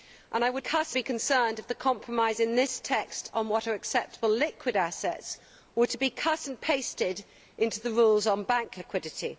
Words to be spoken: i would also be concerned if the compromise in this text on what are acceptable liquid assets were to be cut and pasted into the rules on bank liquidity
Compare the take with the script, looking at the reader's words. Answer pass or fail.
fail